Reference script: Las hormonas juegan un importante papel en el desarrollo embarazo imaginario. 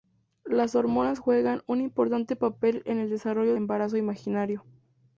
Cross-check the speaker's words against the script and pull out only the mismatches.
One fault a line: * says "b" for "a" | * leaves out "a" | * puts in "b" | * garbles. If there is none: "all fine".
all fine